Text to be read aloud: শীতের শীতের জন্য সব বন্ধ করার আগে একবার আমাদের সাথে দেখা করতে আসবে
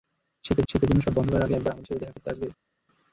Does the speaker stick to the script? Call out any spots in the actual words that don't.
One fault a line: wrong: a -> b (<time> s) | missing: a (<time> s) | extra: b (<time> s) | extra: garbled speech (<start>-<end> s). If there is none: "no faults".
no faults